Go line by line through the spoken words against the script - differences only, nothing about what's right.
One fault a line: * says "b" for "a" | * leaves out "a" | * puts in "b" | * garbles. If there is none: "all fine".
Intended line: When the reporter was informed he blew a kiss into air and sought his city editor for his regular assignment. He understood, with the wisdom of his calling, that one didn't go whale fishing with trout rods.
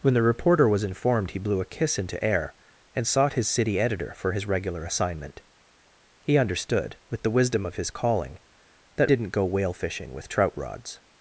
* leaves out "one"